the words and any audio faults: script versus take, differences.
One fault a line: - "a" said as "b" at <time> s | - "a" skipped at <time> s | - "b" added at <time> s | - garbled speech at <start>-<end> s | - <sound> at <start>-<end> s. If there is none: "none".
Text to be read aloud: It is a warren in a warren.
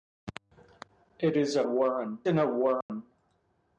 - dropout at 2.8-2.9 s